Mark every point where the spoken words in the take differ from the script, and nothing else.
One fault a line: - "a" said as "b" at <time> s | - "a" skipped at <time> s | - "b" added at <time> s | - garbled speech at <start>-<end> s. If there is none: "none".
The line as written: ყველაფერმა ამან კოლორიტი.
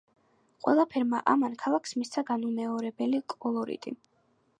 - "ქალაქს მისცა განუმეორებელი" added at 1.6 s